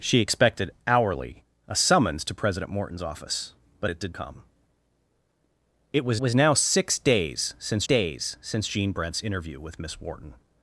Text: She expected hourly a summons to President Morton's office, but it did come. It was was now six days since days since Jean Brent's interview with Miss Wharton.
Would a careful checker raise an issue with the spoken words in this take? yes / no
no